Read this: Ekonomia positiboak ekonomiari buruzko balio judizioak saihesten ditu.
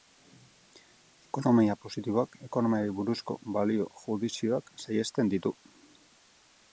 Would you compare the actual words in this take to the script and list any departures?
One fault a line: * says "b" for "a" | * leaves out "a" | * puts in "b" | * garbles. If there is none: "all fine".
all fine